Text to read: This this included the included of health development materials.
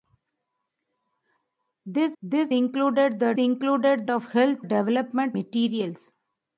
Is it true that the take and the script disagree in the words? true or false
false